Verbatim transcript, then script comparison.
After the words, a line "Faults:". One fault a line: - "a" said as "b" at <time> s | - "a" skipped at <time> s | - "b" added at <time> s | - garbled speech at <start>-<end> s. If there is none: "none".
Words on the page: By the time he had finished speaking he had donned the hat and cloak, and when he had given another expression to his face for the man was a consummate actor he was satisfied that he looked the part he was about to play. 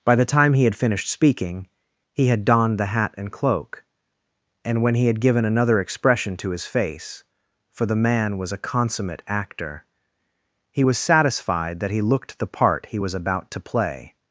By the time he had finished speaking he had donned the hat and cloak, and when he had given another expression to his face for the man was a consummate actor he was satisfied that he looked the part he was about to play.
Faults:
none